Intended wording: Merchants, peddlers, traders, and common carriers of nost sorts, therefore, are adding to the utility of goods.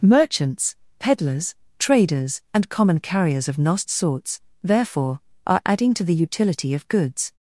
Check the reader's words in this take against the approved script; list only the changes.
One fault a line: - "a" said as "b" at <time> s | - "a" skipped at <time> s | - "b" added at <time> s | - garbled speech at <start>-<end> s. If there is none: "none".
none